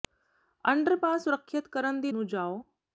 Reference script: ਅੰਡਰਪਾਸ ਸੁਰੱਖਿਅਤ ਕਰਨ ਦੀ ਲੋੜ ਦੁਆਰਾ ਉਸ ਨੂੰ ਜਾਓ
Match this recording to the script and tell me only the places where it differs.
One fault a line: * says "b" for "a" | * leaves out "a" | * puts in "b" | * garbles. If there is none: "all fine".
* leaves out "ਲੋੜ ਦੁਆਰਾ ਉਸ"